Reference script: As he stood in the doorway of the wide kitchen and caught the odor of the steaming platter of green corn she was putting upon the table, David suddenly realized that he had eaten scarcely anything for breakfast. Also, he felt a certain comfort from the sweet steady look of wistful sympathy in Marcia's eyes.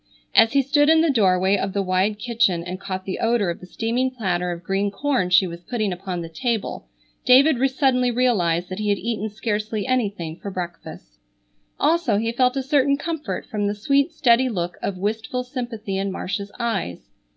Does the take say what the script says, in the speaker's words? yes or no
yes